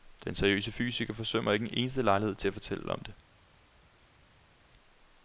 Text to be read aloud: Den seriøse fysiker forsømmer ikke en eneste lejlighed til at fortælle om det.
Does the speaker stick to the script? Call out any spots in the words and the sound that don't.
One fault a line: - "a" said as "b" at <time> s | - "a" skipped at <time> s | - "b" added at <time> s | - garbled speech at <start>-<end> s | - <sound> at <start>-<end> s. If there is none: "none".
none